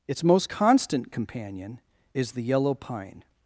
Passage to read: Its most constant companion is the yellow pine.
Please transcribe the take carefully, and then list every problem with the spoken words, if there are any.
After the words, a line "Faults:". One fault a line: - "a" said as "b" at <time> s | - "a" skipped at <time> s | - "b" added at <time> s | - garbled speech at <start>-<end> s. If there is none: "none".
Its most constant companion is the yellow pine.
Faults:
none